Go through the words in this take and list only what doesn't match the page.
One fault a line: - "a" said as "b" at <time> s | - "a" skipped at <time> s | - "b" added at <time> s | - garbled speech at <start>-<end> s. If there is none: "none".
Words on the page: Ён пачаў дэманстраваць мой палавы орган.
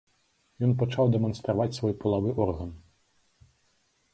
- "мой" said as "свой" at 1.8 s